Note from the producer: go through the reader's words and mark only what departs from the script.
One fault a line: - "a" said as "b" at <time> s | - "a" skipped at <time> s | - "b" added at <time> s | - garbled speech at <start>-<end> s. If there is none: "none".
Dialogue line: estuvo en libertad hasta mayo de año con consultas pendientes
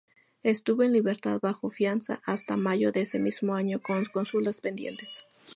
- "bajo fianza" added at 1.4 s
- "ese mismo" added at 3.0 s